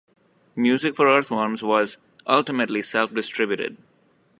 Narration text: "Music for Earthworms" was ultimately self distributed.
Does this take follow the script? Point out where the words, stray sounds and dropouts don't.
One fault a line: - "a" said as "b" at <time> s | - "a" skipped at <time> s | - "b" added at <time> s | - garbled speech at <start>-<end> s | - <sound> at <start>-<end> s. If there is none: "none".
none